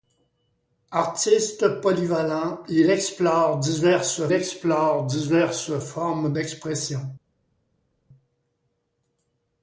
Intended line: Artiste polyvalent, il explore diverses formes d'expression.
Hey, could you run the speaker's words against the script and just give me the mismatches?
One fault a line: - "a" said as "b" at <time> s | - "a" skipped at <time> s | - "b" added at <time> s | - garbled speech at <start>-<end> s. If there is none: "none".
- "explore diverses" added at 4.3 s